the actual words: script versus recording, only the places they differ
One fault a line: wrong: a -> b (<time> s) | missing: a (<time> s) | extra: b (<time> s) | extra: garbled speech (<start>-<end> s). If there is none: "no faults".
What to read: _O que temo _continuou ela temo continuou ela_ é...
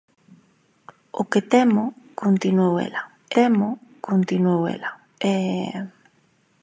no faults